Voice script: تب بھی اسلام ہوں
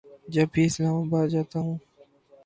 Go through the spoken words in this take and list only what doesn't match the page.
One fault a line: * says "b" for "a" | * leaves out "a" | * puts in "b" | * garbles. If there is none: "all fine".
* says "جب" for "تب"
* puts in "آباد جاتا"